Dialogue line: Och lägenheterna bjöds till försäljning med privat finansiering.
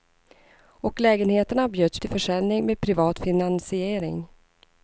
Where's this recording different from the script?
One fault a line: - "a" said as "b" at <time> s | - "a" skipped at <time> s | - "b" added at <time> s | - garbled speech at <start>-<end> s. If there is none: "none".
none